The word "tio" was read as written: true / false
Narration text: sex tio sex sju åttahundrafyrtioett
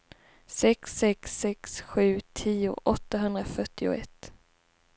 false